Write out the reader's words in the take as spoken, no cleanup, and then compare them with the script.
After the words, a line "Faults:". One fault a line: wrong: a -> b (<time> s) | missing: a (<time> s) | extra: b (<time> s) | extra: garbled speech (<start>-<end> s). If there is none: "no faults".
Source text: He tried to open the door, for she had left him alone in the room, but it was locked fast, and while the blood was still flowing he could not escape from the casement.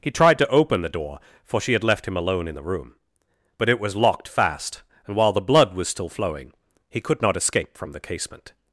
He tried to open the door, for she had left him alone in the room, but it was locked fast, and while the blood was still flowing he could not escape from the casement.
Faults:
no faults